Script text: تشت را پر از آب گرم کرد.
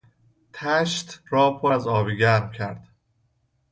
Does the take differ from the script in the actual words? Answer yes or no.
no